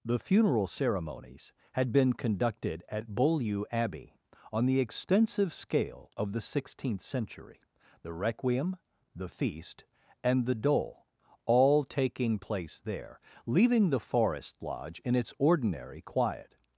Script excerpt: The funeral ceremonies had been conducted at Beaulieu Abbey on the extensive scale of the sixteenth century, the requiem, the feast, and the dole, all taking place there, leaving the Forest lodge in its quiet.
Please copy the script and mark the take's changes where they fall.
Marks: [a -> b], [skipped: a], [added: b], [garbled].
The funeral ceremonies had been conducted at Beaulieu Abbey on the extensive scale of the sixteenth century, the requiem, the feast, and the dole, all taking place there, leaving the Forest lodge in its [added: ordinary] quiet.